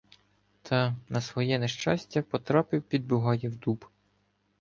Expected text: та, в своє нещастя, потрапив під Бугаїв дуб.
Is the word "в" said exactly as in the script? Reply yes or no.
no